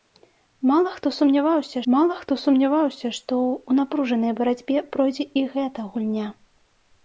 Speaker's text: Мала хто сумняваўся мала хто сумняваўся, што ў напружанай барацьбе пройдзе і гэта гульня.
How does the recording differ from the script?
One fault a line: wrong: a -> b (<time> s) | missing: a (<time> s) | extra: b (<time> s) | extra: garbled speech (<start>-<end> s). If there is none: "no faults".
no faults